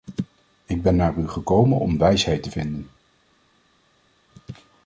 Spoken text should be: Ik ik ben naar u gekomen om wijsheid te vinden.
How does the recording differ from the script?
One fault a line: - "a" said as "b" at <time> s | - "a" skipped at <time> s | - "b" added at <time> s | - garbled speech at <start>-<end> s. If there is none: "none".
- "ik" skipped at 0.8 s